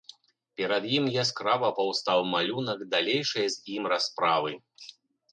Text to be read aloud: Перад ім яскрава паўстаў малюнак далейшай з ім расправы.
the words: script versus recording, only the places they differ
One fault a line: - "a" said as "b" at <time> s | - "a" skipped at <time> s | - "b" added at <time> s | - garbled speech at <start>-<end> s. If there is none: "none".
none